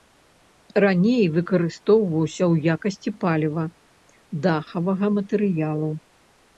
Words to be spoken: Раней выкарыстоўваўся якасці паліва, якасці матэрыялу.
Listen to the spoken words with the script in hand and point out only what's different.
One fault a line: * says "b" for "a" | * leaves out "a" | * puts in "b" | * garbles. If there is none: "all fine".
* puts in "ў"
* says "дахавага" for "якасці"